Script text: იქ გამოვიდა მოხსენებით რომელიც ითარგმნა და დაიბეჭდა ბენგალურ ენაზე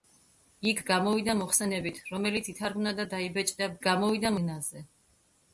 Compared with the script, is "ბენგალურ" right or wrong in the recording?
wrong